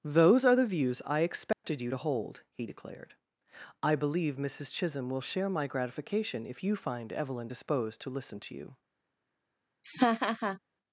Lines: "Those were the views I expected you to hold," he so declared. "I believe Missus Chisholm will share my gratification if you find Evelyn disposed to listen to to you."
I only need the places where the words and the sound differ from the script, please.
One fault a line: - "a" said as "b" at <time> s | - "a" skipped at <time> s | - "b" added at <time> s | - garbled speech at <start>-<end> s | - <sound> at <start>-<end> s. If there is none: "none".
- "were" said as "are" at 0.5 s
- dropout at 1.5-1.6 s
- "so" skipped at 2.7 s
- "to" skipped at 8.6 s
- laugh at 9.8-10.6 s